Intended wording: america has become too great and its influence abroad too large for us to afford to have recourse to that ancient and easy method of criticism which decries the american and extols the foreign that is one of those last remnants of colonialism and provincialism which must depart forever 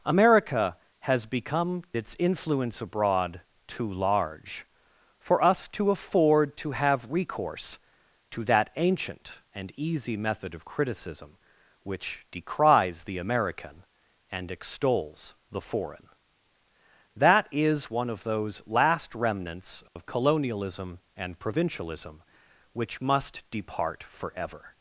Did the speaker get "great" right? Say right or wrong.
wrong